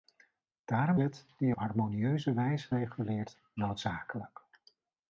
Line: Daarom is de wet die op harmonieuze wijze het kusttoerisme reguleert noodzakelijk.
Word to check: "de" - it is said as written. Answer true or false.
false